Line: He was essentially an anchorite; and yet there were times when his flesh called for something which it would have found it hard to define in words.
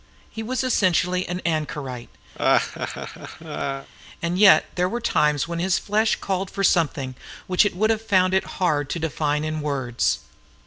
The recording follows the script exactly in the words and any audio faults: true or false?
false